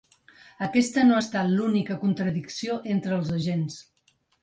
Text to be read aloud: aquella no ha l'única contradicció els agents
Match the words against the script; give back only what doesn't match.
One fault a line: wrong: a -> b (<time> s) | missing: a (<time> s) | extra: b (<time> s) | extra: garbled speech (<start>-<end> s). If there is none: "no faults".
wrong: aquella -> aquesta (0.7 s)
extra: estat (1.2 s)
extra: entre (3.0 s)